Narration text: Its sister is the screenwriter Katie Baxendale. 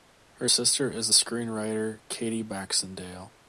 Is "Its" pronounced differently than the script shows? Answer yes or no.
yes